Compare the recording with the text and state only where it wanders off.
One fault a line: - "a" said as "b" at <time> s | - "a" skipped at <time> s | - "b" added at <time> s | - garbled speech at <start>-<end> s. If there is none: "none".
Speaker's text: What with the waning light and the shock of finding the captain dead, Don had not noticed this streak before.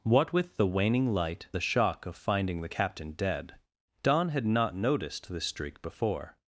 - "and" skipped at 1.5 s